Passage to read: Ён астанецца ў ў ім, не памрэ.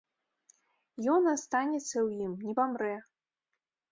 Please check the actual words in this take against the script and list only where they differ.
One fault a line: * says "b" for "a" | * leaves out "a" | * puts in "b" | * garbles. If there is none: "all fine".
* leaves out "ў"